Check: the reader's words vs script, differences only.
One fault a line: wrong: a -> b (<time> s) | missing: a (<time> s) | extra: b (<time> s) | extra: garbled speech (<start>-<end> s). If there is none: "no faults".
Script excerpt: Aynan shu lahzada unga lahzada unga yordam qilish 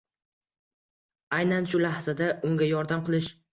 missing: lahzada unga (2.7 s)